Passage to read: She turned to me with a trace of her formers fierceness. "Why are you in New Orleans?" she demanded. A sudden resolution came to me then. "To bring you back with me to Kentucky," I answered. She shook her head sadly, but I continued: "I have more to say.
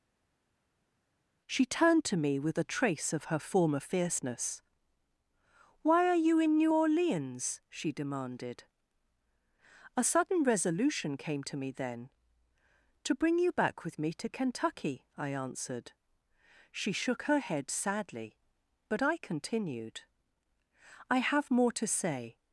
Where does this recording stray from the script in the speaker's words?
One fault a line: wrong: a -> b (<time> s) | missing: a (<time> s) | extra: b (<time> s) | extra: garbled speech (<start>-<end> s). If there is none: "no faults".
wrong: formers -> former (3.4 s)